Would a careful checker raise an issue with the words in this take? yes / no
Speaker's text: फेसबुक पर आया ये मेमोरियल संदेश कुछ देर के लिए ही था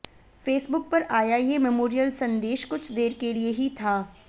no